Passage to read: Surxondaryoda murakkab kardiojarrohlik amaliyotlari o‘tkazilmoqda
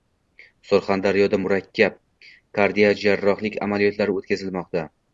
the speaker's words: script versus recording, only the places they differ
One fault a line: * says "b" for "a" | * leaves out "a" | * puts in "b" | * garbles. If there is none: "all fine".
all fine